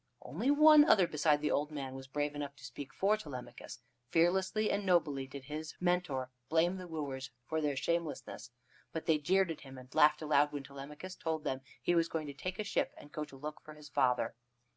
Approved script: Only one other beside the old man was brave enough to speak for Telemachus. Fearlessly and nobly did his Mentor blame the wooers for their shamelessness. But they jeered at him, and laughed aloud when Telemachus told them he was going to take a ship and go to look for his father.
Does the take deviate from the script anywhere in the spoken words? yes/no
no